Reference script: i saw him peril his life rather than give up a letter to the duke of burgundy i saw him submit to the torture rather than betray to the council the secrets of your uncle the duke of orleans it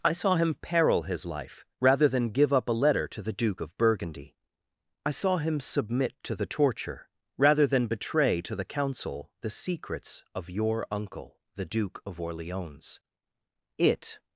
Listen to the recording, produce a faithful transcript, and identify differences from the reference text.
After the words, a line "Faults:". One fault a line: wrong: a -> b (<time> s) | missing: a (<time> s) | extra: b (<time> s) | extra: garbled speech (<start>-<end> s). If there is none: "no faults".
i saw him peril his life rather than give up a letter to the duke of burgundy i saw him submit to the torture rather than betray to the council the secrets of your uncle the duke of orleans it
Faults:
no faults